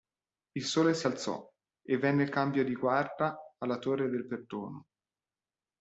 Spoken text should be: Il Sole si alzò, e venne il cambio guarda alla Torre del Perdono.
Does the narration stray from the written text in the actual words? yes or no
yes